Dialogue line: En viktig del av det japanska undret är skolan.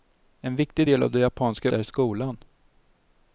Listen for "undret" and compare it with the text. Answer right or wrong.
wrong